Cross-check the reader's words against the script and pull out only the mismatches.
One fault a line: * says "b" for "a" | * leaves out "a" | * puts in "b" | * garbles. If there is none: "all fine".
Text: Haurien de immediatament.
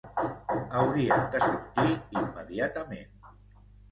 * puts in "sortir"